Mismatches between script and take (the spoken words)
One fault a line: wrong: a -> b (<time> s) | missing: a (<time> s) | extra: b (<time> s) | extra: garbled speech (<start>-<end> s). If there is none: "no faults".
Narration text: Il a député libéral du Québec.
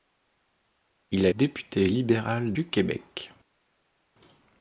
no faults